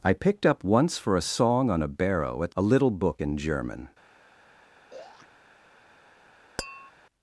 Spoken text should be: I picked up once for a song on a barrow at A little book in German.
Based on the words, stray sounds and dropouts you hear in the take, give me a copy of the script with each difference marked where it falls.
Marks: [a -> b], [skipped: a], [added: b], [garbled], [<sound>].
I picked up once for a song on a barrow at A little book in German. [throat clearing] [tap]